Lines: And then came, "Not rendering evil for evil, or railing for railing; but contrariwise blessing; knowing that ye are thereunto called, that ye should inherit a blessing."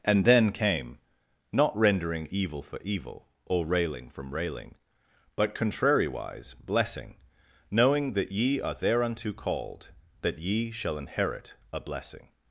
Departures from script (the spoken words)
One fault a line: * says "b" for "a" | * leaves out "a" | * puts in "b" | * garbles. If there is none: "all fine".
* says "from" for "for"
* says "shall" for "should"